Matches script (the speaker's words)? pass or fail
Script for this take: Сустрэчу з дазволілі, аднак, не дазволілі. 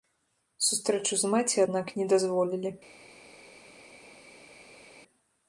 fail